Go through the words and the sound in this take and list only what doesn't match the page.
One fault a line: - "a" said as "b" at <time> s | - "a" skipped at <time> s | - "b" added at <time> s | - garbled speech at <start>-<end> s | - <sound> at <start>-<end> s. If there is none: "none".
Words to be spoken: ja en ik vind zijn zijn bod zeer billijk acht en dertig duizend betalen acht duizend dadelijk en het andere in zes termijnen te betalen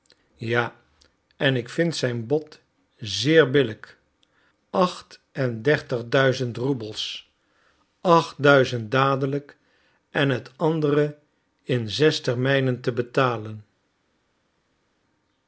- "zijn" skipped at 2.3 s
- "betalen" said as "roebels" at 6.6 s